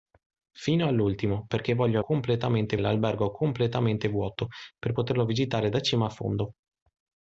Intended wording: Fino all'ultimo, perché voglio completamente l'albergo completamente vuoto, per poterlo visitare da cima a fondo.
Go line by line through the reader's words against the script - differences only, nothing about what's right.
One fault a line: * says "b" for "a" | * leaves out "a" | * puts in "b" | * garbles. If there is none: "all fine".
all fine